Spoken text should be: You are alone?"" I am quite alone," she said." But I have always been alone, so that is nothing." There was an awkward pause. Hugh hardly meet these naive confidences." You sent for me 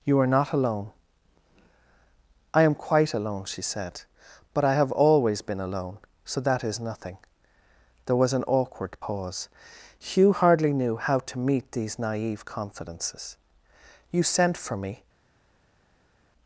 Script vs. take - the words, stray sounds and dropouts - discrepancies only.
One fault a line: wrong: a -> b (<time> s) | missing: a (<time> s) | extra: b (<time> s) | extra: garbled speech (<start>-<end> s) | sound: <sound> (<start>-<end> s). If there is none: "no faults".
extra: not (0.3 s)
extra: knew how to (10.7 s)